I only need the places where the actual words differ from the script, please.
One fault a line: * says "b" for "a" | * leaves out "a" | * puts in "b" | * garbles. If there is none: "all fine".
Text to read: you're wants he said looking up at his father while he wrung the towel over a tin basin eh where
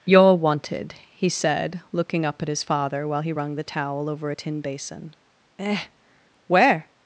* says "wanted" for "wants"